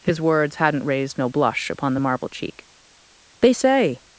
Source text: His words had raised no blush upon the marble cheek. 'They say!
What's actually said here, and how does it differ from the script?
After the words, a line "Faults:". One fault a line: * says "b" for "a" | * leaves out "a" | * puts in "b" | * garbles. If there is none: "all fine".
His words hadn't raised no blush upon the marble cheek. 'They say!
Faults:
* says "hadn't" for "had"